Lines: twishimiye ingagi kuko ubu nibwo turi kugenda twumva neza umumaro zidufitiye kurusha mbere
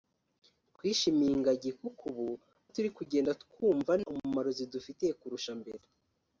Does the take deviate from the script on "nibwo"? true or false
true